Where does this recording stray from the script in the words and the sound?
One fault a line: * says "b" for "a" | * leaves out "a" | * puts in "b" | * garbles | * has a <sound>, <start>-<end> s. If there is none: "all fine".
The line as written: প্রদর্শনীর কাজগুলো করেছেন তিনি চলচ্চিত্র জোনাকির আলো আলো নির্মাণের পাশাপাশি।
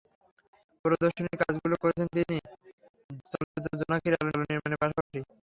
* has a dropout, 3.4-3.5 s
* has a dropout, 5.0-5.1 s